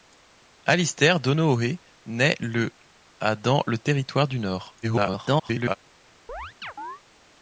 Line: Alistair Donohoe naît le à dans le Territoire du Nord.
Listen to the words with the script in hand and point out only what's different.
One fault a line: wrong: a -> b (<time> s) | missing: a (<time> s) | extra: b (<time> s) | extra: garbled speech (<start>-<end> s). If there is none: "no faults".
extra: garbled speech (4.8-5.8 s)